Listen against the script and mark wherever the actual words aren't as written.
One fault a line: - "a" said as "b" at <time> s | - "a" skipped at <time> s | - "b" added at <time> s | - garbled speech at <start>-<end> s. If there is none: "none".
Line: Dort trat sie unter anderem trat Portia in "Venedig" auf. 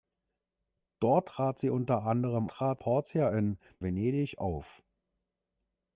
none